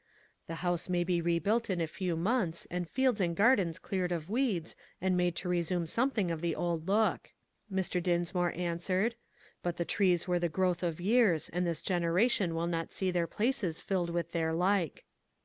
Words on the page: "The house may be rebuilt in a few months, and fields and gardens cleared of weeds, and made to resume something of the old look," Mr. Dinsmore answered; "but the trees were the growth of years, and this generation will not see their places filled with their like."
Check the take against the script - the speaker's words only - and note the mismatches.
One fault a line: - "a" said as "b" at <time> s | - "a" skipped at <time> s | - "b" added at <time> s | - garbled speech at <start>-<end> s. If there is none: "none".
none